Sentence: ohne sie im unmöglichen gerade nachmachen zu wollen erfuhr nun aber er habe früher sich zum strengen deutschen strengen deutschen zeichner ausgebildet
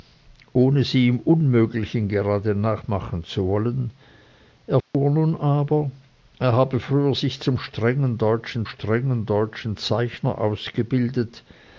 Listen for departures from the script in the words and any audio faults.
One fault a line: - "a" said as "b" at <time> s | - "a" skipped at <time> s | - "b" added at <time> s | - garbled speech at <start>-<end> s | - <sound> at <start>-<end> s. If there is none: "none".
- dropout at 4.8-4.9 s